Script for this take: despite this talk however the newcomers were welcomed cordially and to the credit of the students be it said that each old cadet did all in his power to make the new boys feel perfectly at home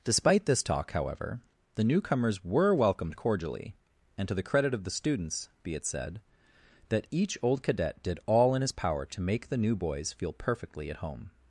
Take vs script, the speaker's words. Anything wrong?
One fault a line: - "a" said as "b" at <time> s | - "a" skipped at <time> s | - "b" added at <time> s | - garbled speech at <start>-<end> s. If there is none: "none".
none